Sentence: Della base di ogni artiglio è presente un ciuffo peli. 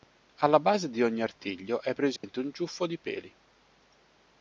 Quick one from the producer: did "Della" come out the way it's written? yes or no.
no